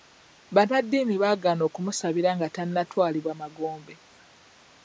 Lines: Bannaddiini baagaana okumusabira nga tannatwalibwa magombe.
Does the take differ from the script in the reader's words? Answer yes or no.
no